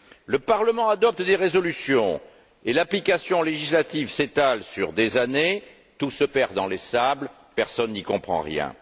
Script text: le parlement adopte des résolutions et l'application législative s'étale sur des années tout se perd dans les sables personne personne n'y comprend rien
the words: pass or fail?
fail